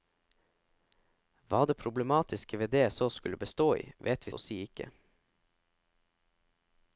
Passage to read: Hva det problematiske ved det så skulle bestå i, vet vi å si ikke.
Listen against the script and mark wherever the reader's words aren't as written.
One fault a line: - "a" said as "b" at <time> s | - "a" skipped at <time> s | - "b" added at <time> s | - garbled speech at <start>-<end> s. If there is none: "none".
none